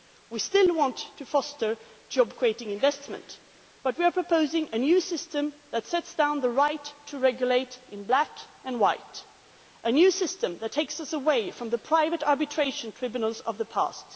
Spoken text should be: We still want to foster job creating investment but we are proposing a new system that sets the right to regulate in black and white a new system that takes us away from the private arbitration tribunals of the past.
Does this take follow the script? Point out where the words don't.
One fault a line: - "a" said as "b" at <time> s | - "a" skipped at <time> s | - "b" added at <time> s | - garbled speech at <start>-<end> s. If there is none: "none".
- "down" added at 6.1 s